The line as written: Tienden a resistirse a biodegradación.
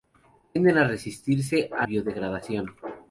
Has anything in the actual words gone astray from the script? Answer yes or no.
no